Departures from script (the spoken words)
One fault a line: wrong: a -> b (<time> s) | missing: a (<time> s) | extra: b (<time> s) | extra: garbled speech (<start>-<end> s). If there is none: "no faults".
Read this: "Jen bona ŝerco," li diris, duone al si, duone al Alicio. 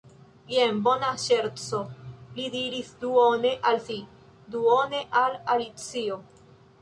no faults